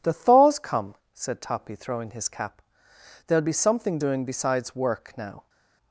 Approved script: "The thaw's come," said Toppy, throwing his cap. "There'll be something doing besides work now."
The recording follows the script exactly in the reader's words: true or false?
true